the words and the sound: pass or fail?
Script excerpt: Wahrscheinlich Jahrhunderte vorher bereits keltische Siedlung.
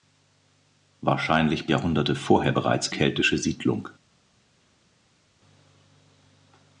pass